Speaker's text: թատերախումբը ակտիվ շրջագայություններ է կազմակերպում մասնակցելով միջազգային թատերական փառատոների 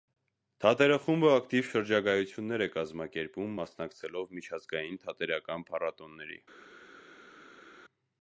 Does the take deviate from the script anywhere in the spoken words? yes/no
no